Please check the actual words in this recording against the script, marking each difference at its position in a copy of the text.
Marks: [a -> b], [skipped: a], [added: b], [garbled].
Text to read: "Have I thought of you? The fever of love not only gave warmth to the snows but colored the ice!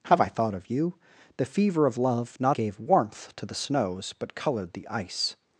"Have I thought of you? The fever of love not [skipped: only] gave warmth to the snows but colored the ice!